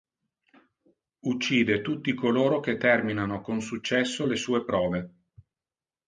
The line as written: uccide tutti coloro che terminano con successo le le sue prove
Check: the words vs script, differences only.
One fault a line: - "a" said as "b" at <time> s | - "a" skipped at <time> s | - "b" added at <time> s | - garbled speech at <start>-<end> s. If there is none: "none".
- "le" skipped at 4.4 s